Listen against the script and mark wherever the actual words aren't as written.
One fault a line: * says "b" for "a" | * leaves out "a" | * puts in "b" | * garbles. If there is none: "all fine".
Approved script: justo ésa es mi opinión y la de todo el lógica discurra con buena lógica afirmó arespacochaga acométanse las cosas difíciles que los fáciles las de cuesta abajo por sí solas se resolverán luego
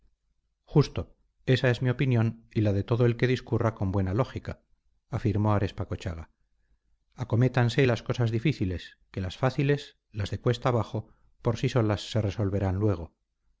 * says "que" for "lógica"
* says "las" for "los"